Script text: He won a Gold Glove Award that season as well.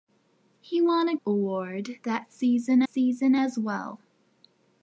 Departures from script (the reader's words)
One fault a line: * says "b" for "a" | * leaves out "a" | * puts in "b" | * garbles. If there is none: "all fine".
* leaves out "Gold Glove"
* puts in "season"